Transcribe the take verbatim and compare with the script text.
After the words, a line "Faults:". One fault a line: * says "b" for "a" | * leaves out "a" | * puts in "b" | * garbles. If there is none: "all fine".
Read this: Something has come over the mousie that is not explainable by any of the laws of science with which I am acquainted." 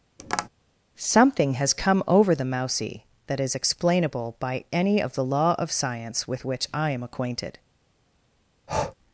Something has come over the mousie that is explainable by any of the law of science with which I am acquainted."
Faults:
* leaves out "not"
* says "law" for "laws"